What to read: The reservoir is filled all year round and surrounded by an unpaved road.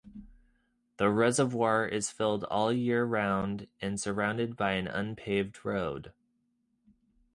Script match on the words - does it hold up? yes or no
yes